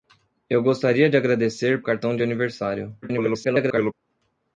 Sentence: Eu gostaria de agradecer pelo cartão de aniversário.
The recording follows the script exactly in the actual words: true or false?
false